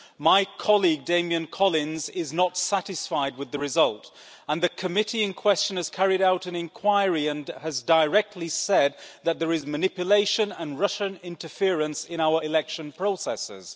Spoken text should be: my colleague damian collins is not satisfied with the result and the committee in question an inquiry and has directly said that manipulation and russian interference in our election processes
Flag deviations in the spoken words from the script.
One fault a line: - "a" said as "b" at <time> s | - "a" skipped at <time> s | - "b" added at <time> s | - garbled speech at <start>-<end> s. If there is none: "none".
- "has carried out" added at 5.8 s
- "there is" added at 9.4 s